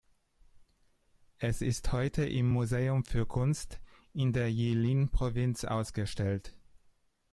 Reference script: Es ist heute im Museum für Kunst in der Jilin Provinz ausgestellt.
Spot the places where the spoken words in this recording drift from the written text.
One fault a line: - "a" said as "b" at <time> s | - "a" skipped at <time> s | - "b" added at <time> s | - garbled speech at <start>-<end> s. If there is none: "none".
none